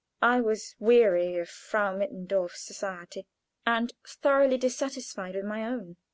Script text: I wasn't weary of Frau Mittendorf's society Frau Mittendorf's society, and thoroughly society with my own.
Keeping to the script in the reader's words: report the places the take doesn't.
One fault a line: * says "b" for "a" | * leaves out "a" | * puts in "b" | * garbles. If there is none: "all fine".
* says "was" for "wasn't"
* leaves out "Frau Mittendorf's society"
* says "dissatisfied" for "society"